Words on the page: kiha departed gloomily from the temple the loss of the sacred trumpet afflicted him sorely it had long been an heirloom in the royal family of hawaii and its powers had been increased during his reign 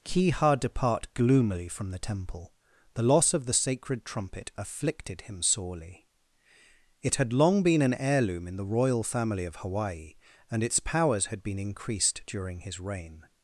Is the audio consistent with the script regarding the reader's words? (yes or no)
no